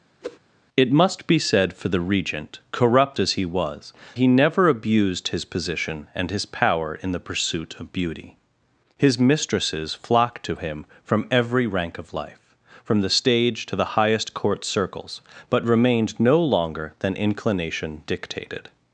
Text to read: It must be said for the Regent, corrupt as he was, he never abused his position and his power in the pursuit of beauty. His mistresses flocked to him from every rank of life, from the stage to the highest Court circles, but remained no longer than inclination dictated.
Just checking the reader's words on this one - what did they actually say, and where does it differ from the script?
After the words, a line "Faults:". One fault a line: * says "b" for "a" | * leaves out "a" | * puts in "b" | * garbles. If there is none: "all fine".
It must be said for the Regent, corrupt as he was, he never abused his position and his power in the pursuit of beauty. His mistresses flocked to him from every rank of life, from the stage to the highest Court circles, but remained no longer than inclination dictated.
Faults:
all fine